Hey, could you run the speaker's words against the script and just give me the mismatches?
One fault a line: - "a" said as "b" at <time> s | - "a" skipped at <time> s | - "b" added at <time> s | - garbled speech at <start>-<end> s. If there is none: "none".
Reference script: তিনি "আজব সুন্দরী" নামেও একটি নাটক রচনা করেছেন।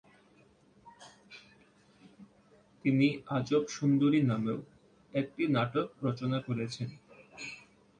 none